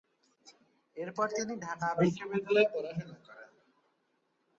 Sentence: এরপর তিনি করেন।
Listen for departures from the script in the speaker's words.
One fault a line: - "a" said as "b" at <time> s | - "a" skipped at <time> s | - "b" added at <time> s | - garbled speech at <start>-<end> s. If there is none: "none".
- "ঢাকা বিশ্ববিদ্যালয়ে পড়াশোনা" added at 1.6 s